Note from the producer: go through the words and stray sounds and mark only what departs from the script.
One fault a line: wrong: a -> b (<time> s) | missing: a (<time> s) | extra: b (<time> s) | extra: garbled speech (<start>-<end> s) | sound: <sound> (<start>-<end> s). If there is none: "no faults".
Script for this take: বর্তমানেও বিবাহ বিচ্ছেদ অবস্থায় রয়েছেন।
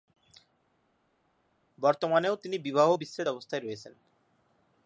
extra: তিনি (2.3 s)